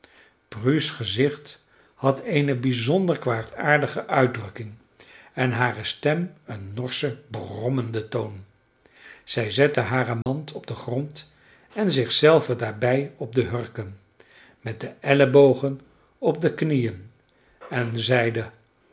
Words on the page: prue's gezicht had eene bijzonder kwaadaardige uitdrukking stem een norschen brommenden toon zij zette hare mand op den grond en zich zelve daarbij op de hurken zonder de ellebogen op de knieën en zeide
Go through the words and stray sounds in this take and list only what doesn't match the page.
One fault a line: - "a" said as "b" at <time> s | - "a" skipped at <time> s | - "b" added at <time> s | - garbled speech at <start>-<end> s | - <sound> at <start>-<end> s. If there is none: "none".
- "en hare" added at 5.3 s
- dropout at 10.2-10.3 s
- "zonder" said as "met" at 14.6 s